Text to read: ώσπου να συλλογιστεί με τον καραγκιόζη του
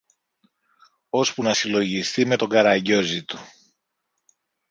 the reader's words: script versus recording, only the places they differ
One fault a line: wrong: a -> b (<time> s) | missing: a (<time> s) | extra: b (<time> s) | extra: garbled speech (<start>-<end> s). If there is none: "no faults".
no faults